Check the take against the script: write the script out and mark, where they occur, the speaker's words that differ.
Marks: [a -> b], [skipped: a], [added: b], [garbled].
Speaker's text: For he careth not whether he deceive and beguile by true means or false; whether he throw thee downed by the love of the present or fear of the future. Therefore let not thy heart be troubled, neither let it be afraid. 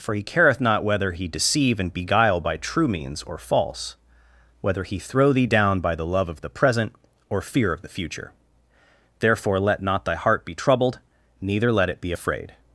For he careth not whether he deceive and beguile by true means or false; whether he throw thee [downed -> down] by the love of the present or fear of the future. Therefore let not thy heart be troubled, neither let it be afraid.